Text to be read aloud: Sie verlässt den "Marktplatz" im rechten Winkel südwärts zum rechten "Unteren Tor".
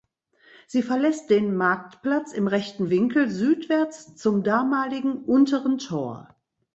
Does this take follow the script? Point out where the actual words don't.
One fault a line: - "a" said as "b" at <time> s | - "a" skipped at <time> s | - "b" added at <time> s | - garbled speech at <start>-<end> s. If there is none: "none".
- "rechten" said as "damaligen" at 4.4 s